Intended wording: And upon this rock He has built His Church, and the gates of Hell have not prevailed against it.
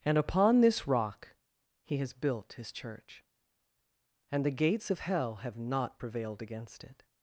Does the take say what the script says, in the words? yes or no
yes